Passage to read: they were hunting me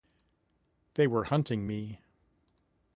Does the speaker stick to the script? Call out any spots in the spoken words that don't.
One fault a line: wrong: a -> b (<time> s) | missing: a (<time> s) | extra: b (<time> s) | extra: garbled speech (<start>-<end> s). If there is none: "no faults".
no faults